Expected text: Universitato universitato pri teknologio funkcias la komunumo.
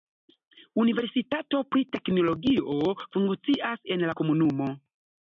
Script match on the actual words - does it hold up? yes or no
no